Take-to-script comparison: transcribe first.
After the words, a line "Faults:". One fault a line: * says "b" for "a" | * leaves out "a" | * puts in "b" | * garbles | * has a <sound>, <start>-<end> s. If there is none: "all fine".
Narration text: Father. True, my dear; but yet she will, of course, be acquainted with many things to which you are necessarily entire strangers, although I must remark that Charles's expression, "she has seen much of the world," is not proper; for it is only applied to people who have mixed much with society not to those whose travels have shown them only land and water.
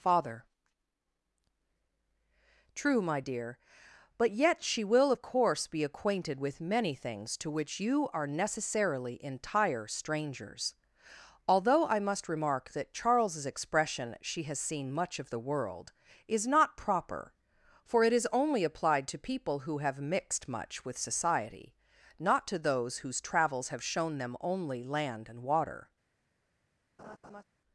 Father. True, my dear; but yet she will, of course, be acquainted with many things to which you are necessarily entire strangers, although I must remark that Charles's expression, "she has seen much of the world," is not proper; for it is only applied to people who have mixed much with society not to those whose travels have shown them only land and water.
Faults:
* has a laugh, 27.0-27.4 s